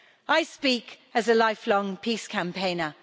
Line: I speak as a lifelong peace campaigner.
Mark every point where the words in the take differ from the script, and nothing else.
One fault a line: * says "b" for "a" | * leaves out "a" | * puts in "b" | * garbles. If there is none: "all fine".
all fine